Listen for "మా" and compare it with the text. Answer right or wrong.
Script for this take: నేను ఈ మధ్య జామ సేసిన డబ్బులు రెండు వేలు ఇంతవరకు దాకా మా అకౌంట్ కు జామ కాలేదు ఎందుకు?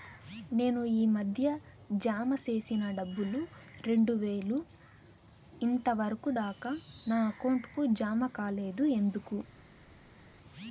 wrong